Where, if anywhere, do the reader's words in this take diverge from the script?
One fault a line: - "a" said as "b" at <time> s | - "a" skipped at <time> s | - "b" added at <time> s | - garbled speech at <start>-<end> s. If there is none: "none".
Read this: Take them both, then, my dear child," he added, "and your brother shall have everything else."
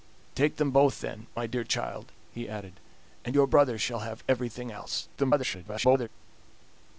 - garbled speech at 5.2-6.1 s